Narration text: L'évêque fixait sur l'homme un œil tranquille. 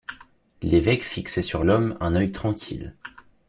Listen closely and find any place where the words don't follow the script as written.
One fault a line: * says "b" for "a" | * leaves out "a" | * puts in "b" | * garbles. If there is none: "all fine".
all fine